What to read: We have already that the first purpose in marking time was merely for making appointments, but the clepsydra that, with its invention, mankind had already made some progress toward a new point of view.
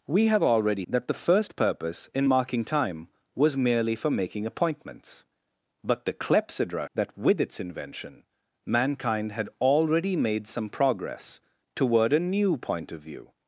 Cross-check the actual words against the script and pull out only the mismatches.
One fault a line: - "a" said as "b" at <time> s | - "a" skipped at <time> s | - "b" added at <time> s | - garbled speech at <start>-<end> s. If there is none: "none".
none